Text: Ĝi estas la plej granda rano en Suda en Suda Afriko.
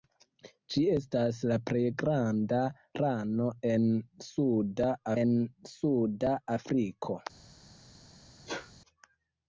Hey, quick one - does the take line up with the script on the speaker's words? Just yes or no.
yes